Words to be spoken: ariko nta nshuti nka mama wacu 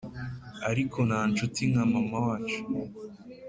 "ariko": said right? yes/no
yes